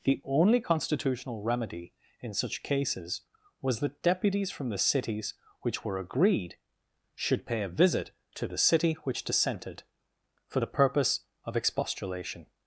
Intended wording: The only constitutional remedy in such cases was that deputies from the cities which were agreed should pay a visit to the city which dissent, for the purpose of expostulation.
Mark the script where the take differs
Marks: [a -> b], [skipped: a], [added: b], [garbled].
The only constitutional remedy in such cases was that deputies from the cities which were agreed should pay a visit to the city which [dissent, -> dissented] for the purpose of expostulation.